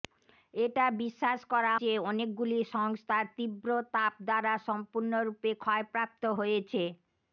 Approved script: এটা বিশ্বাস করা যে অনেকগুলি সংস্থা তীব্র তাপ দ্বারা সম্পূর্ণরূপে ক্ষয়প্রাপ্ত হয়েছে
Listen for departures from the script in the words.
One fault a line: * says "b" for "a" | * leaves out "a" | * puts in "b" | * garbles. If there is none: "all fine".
all fine